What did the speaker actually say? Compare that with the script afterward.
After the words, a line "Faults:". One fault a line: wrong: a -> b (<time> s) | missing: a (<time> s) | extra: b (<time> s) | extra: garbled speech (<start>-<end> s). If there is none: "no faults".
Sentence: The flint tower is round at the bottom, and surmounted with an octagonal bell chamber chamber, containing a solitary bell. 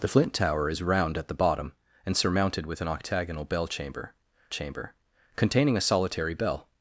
The flint tower is round at the bottom, and surmounted with an octagonal bell chamber chamber, containing a solitary bell.
Faults:
no faults